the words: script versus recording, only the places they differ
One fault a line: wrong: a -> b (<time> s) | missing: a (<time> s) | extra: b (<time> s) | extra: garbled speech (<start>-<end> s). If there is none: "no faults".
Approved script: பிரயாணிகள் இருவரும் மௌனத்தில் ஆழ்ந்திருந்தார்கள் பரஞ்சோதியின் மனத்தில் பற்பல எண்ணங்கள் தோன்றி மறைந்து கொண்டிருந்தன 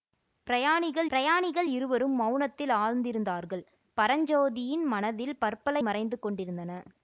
extra: பிரயாணிகள் (1.1 s)
missing: எண்ணங்கள் தோன்றி (5.8 s)